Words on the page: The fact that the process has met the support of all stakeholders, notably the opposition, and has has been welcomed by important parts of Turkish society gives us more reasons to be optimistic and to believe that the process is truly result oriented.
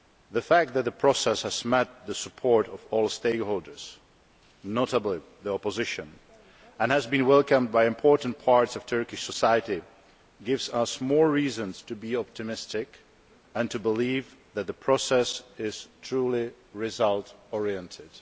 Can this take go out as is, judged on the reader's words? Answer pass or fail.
fail